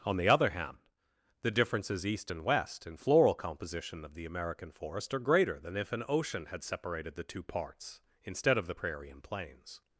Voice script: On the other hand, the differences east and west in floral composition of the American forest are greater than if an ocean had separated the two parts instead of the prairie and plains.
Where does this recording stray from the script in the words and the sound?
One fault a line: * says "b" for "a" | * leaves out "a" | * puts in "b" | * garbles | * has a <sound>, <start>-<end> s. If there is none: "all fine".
all fine